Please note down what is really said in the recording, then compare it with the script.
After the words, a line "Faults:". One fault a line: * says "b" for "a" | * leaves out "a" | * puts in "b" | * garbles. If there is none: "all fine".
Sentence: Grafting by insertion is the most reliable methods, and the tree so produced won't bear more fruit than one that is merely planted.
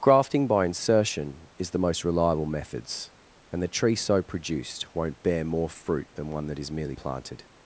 Grafting by insertion is the most reliable methods, and the tree so produced won't bear more fruit than one that is merely planted.
Faults:
all fine